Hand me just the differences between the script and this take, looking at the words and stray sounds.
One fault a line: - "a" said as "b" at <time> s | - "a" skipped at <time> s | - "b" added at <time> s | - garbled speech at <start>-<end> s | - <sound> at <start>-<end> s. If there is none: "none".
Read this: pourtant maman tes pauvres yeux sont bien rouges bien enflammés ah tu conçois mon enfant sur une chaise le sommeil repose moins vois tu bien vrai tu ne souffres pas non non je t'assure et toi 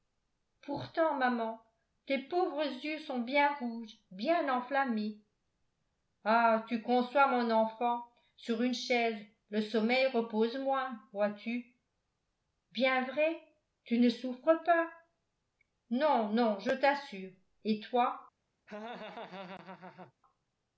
- laugh at 18.7-20.1 s